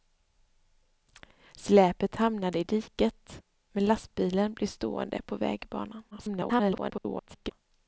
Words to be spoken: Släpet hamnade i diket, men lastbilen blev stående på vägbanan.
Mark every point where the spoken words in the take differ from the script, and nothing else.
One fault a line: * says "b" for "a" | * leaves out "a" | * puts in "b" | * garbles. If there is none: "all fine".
* garbles